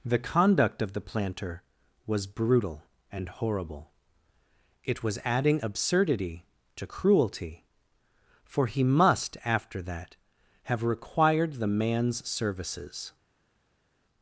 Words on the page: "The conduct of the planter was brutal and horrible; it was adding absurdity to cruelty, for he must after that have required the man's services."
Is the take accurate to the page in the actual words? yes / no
yes